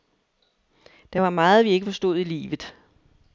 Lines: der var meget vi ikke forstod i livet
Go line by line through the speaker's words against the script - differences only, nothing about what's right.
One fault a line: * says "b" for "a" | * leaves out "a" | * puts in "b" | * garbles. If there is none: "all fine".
all fine